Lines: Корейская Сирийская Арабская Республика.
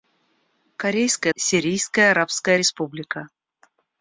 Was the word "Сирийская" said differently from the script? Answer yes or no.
no